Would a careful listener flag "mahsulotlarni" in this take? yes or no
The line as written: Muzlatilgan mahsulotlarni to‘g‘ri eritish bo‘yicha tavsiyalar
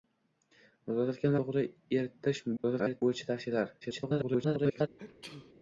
yes